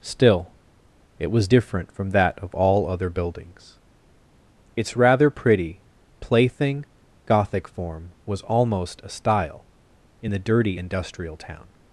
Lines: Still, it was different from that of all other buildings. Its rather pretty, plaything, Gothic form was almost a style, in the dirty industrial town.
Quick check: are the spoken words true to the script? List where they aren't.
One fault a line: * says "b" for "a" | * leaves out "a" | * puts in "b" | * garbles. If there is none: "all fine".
all fine